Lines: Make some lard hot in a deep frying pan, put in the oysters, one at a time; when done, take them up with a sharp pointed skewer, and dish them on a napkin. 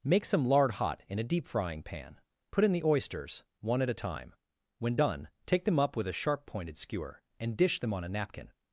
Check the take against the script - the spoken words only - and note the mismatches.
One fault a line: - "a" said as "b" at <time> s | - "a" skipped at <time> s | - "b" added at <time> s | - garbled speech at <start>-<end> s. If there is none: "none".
none